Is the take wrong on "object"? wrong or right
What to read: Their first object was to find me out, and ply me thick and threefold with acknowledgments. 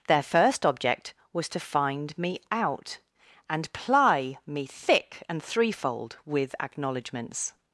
right